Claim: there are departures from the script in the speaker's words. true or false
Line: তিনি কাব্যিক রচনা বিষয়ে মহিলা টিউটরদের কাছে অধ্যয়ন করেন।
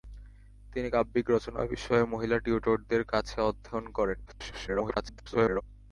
true